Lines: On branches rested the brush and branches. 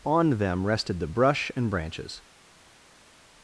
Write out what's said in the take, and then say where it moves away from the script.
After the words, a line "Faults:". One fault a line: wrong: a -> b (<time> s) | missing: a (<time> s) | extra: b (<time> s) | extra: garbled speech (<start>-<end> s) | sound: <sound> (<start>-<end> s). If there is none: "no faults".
On them rested the brush and branches.
Faults:
wrong: branches -> them (0.3 s)